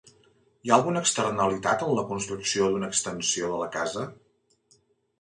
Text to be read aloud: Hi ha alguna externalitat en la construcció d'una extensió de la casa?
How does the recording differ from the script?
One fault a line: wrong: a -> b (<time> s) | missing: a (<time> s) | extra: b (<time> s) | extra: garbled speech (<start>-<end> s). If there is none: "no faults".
no faults